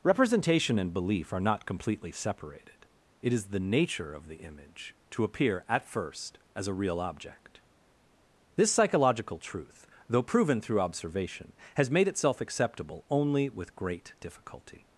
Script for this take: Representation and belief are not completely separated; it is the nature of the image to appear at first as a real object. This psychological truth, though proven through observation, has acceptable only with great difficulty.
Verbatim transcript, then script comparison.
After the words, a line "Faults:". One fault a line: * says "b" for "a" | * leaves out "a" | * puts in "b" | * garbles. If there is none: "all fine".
Representation and belief are not completely separated; it is the nature of the image to appear at first as a real object. This psychological truth, though proven through observation, has made itself acceptable only with great difficulty.
Faults:
* puts in "made itself"